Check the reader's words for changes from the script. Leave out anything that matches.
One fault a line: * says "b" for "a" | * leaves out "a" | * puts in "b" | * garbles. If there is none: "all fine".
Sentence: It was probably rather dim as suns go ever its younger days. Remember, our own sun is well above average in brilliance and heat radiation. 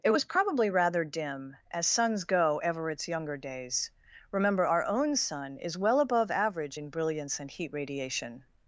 all fine